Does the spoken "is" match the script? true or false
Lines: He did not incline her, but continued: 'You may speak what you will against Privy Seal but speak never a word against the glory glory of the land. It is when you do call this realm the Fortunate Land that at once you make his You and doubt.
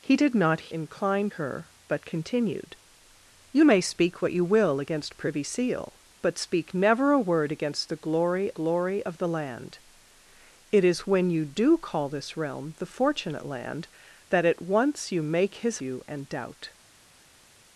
true